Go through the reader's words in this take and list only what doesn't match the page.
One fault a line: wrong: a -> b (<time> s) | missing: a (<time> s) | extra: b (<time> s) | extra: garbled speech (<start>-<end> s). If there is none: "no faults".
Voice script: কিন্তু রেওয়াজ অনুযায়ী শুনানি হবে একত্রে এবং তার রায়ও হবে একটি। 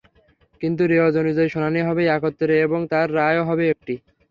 no faults